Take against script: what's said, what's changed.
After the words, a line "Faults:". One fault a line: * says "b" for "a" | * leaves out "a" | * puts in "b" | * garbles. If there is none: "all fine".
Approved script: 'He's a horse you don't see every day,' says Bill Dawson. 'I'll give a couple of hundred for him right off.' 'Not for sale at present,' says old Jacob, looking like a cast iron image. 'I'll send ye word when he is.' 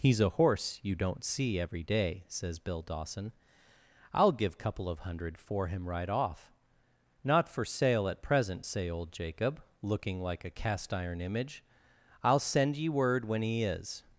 'He's a horse you don't see every day,' says Bill Dawson. 'I'll give couple of hundred for him right off.' 'Not for sale at present,' say old Jacob, looking like a cast iron image. 'I'll send ye word when he is.'
Faults:
* leaves out "a"
* says "say" for "says"